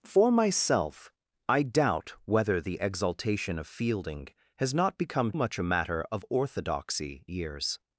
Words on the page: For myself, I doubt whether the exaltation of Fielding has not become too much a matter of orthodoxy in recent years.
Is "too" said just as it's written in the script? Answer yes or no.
no